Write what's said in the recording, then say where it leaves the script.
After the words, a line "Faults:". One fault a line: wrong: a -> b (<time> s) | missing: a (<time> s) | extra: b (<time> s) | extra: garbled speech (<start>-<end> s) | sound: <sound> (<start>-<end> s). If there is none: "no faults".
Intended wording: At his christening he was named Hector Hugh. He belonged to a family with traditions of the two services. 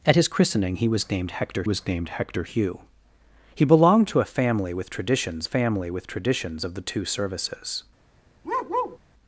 At his christening he was named Hector was named Hector Hugh. He belonged to a family with traditions family with traditions of the two services.
Faults:
extra: was named Hector (1.6 s)
extra: family with traditions (5.4 s)
sound: bark (8.4-9.0 s)